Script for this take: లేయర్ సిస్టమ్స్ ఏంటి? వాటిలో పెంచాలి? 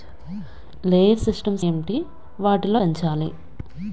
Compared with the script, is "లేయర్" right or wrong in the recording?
right